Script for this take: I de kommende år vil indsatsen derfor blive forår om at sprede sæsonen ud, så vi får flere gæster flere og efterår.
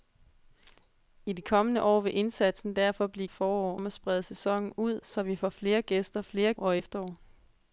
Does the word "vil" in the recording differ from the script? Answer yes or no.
no